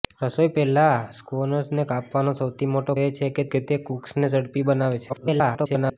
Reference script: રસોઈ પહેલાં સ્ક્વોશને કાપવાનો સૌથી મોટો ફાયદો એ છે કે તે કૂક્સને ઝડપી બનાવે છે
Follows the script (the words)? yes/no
no